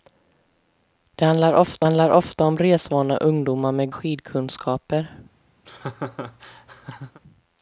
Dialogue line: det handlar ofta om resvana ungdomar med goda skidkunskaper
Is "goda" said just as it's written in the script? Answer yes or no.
no